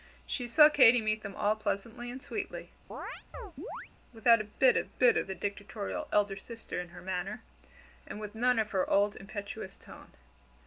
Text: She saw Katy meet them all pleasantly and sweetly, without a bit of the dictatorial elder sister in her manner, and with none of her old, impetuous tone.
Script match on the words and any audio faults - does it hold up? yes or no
no